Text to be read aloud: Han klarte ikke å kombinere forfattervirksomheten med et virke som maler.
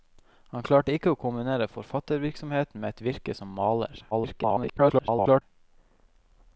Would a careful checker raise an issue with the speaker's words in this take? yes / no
yes